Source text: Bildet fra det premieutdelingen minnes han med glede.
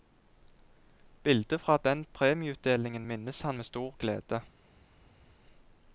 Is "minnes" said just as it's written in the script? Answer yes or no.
yes